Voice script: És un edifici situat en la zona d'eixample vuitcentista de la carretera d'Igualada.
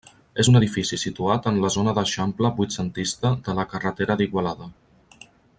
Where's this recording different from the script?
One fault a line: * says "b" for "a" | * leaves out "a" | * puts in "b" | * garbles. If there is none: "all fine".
all fine